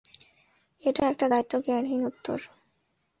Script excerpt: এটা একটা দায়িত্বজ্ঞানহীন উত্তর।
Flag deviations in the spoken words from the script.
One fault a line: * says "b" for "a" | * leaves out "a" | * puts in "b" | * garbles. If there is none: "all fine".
all fine